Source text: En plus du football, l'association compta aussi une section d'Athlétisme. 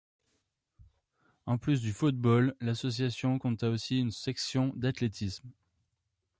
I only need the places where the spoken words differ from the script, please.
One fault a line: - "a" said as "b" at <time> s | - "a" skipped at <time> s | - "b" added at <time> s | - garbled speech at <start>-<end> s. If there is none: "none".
none